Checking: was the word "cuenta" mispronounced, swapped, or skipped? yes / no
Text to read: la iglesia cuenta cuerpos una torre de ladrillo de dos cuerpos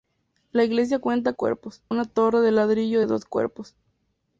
no